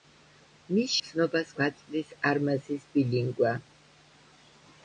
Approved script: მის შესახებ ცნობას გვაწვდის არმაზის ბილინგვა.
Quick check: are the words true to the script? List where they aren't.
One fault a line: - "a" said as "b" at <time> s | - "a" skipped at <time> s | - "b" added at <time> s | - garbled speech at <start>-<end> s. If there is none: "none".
- "შესახებ" skipped at 0.9 s